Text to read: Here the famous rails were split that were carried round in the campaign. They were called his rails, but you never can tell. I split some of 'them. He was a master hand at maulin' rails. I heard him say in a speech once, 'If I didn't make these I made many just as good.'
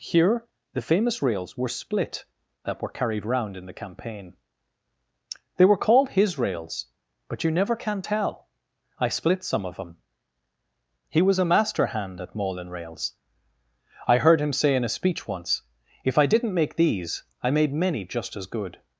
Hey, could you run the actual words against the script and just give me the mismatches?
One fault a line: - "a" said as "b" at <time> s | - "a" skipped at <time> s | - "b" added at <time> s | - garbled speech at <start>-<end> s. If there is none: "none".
none